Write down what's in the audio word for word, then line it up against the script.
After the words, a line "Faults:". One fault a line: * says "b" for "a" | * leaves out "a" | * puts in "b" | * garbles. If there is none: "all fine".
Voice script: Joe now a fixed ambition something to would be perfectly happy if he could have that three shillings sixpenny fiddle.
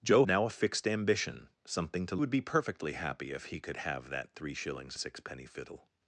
Joe now a fixed ambition something to would be perfectly happy if he could have that three shillings sixpenny fiddle.
Faults:
all fine